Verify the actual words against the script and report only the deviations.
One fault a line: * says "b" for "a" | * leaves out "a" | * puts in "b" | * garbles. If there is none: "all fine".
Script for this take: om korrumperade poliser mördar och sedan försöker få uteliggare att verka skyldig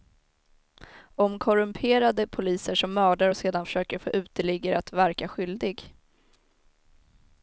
* puts in "som"